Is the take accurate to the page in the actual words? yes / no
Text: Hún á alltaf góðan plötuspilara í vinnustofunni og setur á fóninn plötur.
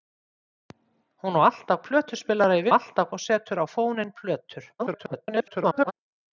no